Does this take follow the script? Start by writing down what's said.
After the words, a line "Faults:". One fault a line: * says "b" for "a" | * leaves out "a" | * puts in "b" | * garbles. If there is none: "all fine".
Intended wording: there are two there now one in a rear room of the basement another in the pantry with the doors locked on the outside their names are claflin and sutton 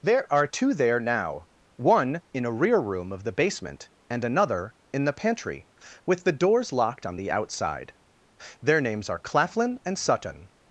there are two there now one in a rear room of the basement and another in the pantry with the doors locked on the outside their names are claflin and sutton
Faults:
* puts in "and"